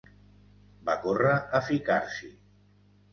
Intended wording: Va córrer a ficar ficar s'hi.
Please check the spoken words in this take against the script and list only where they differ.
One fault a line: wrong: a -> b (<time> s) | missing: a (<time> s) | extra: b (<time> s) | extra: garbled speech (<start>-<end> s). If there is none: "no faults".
missing: ficar (2.0 s)